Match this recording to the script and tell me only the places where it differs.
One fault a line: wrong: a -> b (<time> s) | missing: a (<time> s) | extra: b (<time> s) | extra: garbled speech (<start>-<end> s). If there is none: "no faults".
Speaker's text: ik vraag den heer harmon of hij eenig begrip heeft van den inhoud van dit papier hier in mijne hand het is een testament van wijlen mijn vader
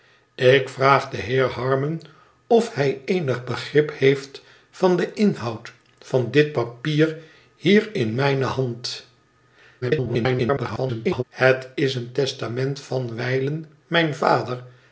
extra: garbled speech (9.8-11.2 s)